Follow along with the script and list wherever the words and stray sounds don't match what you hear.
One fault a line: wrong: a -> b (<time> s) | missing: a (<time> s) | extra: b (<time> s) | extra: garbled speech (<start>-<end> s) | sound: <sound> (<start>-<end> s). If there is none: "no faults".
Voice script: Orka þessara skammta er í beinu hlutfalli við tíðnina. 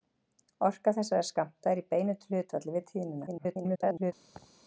extra: garbled speech (3.3-4.1 s)
sound: laugh (4.3-4.5 s)